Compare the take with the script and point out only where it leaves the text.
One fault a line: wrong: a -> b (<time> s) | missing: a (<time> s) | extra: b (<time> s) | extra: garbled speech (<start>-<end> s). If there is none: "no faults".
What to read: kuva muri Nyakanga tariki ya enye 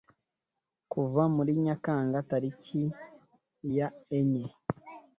no faults